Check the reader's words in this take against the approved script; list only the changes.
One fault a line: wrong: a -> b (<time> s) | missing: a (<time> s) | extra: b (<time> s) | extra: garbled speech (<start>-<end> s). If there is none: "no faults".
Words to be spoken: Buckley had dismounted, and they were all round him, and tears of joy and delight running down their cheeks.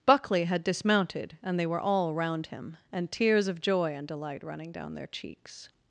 no faults